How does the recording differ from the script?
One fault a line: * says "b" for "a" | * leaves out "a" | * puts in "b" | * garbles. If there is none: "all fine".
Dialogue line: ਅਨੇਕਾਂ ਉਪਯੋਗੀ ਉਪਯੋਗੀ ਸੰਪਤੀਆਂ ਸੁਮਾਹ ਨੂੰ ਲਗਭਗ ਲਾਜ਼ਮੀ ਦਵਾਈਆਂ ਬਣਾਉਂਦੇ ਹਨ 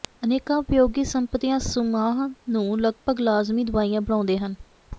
* leaves out "ਉਪਯੋਗੀ"